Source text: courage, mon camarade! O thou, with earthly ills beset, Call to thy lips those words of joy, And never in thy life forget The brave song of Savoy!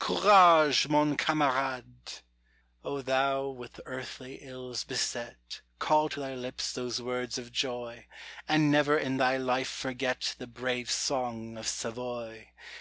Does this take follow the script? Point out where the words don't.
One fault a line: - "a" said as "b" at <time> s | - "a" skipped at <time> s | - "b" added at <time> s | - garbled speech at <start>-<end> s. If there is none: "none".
none